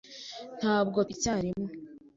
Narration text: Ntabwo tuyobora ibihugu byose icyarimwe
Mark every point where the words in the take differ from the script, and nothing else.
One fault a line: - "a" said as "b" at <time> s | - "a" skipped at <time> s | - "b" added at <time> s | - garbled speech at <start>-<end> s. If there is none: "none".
- "tuyobora ibihugu byose" skipped at 1.0 s